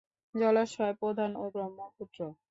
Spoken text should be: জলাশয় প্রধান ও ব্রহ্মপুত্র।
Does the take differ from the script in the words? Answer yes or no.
no